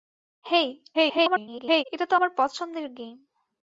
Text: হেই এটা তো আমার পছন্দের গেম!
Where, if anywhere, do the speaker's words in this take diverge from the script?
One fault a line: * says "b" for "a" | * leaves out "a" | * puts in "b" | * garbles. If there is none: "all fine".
* garbles